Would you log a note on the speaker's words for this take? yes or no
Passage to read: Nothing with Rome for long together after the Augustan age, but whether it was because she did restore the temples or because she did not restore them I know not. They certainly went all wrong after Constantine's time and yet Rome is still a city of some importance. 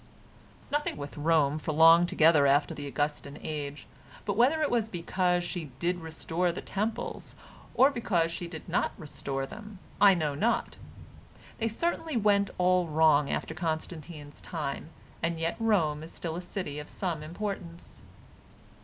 no